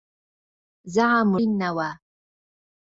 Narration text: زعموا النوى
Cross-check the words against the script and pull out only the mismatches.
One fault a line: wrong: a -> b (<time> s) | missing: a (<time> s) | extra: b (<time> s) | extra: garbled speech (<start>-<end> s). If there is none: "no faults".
no faults